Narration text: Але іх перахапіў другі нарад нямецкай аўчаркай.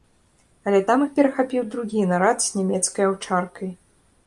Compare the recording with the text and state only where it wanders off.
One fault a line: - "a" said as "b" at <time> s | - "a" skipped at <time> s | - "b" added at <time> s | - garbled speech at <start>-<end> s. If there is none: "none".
- "там" added at 0.9 s
- "з" added at 2.5 s